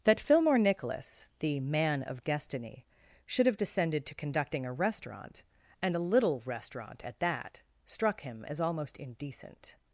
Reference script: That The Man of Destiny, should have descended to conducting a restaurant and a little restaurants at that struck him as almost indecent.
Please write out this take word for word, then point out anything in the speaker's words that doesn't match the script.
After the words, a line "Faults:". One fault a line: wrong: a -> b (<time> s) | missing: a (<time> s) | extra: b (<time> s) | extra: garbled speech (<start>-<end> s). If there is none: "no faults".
That Fillmore Nicholas, the Man of Destiny, should have descended to conducting a restaurant and a little restaurant at that struck him as almost indecent.
Faults:
extra: Fillmore Nicholas (0.2 s)
wrong: restaurants -> restaurant (6.5 s)